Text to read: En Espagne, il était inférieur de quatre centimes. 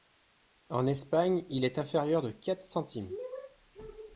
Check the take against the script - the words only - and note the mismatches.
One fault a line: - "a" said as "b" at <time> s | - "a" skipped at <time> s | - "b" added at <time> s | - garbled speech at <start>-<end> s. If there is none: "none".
- "était" said as "est" at 1.6 s